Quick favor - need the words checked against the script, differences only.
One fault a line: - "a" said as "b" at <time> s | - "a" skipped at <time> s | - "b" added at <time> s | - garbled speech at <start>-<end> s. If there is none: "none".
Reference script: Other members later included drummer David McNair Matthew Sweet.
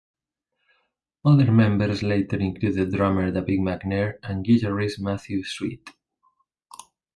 - "and guitarist" added at 4.2 s